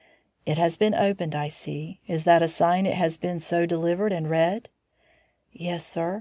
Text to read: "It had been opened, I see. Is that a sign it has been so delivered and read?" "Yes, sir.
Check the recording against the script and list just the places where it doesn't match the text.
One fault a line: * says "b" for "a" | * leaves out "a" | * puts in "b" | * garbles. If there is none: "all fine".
* says "has" for "had"